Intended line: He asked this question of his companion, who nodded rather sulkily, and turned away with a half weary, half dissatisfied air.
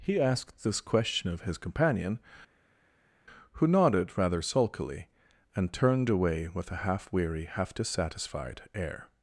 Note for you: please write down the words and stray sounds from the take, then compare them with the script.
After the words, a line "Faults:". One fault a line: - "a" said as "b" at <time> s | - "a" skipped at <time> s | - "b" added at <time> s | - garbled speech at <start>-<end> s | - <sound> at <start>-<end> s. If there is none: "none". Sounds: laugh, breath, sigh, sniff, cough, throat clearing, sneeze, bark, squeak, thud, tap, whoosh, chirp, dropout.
He asked this question of his companion, who nodded rather sulkily, and turned away with a half weary, half dissatisfied air.
Faults:
none